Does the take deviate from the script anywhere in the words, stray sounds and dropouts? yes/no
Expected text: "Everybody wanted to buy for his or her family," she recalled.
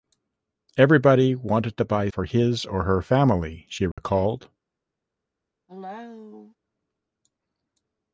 yes